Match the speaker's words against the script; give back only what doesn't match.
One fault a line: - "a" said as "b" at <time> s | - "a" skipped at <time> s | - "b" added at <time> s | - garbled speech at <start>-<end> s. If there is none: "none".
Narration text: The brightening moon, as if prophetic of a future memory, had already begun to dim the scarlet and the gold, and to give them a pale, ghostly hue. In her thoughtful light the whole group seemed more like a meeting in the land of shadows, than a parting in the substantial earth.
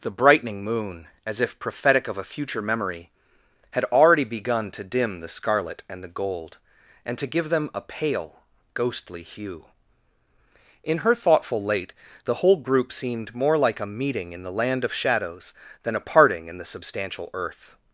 - "light" said as "late" at 11.6 s